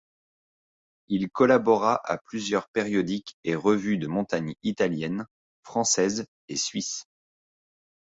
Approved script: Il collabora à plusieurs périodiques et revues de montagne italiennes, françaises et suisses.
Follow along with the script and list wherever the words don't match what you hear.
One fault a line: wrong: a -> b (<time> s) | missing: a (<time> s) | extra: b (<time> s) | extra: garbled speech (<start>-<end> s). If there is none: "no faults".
no faults